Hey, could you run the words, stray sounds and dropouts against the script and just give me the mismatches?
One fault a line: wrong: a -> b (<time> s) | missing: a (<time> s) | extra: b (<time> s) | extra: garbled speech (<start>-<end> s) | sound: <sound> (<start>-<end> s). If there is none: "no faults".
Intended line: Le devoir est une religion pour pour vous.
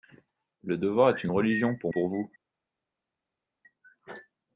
no faults